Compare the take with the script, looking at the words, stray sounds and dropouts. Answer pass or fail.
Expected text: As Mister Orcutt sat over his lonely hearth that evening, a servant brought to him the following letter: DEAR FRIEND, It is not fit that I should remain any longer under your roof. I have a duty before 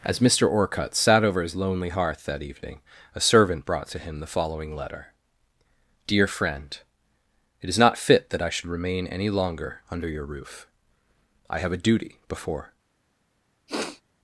fail